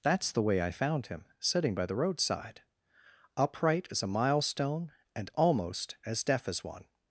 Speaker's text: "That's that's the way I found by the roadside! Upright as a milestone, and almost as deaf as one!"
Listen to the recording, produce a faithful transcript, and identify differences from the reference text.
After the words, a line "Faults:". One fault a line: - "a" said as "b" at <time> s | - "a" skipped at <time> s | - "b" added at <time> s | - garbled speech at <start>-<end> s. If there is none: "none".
"That's the way I found him, sitting by the roadside! Upright as a milestone, and almost as deaf as one!"
Faults:
- "that's" skipped at 0.3 s
- "him sitting" added at 1.1 s